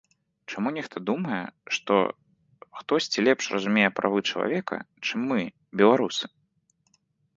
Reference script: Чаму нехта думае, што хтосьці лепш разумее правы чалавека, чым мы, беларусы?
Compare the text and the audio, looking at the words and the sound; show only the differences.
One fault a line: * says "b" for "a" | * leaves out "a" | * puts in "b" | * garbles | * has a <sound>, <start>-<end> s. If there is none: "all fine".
all fine